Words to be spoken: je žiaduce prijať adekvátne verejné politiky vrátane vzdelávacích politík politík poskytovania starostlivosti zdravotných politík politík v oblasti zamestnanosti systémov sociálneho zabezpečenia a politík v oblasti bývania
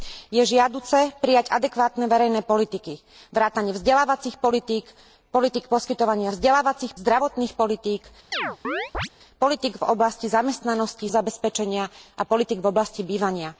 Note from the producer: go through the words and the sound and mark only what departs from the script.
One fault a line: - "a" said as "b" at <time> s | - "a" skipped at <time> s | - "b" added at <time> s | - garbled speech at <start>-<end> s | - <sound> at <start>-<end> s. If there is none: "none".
- "starostlivosti" said as "vzdelávacích" at 6.3 s
- chirp at 8.3-9.1 s
- "systémov sociálneho" skipped at 11.1 s